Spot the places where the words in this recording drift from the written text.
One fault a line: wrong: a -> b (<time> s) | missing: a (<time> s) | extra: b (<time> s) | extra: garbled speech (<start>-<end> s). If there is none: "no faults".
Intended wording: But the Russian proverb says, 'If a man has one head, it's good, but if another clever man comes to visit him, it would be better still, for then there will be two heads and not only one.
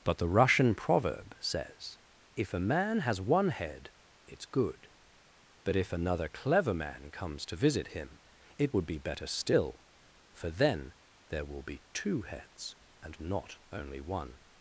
no faults